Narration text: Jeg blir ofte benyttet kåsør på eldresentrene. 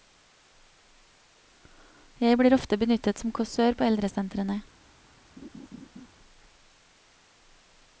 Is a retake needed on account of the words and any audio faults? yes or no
yes